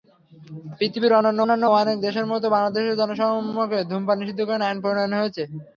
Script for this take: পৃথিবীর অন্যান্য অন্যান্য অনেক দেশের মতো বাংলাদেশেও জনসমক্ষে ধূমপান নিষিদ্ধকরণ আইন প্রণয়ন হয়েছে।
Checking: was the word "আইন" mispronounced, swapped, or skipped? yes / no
no